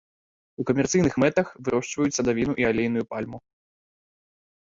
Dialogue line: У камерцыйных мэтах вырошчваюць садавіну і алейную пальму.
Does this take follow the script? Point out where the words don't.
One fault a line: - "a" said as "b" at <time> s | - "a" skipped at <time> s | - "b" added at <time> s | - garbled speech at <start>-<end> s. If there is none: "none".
none